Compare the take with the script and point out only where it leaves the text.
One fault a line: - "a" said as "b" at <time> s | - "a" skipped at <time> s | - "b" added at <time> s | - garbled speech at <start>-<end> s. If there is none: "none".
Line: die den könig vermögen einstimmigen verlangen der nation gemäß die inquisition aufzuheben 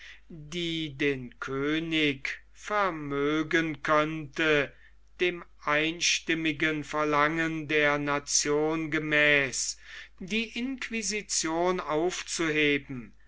- "könnte dem" added at 3.8 s